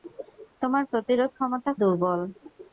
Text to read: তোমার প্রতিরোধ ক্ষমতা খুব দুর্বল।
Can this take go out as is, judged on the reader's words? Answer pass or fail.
fail